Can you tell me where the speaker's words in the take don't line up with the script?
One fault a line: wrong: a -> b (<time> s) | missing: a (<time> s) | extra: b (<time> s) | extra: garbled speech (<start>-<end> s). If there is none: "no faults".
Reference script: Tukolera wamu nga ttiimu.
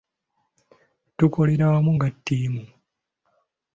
no faults